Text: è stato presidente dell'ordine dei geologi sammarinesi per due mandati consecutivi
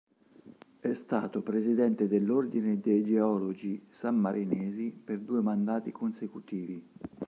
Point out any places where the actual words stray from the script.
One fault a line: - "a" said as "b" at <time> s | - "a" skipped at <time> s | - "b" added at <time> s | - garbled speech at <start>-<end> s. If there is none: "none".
none